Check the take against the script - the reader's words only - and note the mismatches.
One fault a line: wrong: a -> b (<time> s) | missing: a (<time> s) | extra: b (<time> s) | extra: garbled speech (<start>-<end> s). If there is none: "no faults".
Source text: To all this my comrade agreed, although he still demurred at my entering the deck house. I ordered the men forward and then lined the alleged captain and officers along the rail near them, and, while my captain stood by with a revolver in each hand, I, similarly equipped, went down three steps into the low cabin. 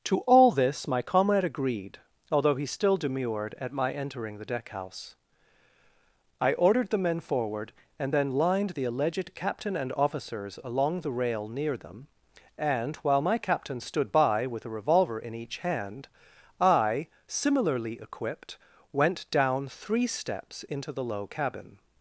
no faults